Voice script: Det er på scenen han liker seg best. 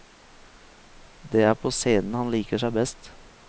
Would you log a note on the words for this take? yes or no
no